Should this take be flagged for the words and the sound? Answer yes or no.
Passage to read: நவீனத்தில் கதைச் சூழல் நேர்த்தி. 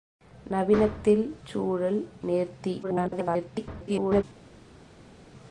yes